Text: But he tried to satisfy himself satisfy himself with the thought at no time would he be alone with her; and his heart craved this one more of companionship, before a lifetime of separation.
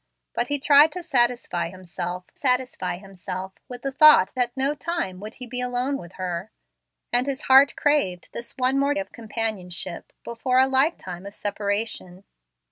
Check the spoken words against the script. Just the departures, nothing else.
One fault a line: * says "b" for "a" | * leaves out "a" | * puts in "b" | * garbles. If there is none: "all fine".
all fine